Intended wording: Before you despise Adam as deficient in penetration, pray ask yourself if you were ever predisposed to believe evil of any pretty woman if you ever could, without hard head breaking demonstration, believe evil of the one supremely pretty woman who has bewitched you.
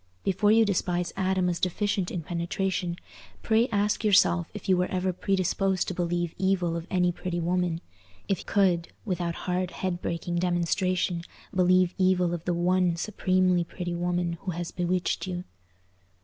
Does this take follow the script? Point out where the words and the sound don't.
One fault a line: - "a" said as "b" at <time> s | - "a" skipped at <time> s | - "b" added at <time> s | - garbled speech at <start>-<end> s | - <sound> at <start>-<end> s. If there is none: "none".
- "you ever" skipped at 8.4 s